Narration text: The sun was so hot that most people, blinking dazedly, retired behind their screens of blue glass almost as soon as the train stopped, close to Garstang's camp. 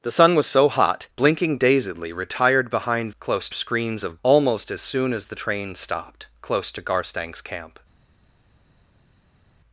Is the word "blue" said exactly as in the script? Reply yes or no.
no